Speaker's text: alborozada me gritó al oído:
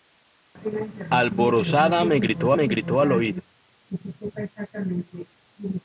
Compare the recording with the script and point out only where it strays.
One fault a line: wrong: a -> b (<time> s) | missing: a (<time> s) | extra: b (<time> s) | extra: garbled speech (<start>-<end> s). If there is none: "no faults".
extra: me gritó (2.5 s)